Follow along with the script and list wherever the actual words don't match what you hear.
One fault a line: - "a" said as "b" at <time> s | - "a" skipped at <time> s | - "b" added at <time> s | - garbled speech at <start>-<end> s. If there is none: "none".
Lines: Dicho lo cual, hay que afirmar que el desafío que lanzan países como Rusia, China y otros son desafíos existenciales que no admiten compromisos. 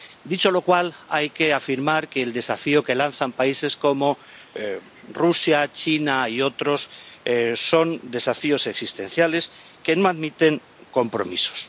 none